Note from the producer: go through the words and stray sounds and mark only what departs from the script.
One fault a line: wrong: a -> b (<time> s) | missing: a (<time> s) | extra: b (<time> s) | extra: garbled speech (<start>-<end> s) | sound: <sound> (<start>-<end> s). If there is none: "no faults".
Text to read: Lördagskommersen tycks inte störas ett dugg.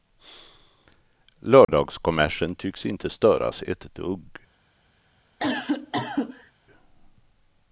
sound: dropout (1.6-1.7 s)
sound: cough (5.4-6.5 s)